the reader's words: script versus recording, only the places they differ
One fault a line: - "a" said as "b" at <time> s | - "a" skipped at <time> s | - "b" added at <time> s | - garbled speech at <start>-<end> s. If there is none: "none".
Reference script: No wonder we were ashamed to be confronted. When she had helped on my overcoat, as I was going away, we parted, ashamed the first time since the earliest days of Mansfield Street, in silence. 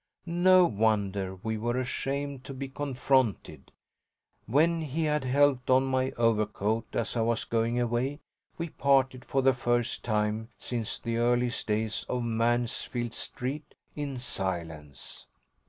- "she" said as "he" at 4.8 s
- "ashamed" said as "for" at 9.2 s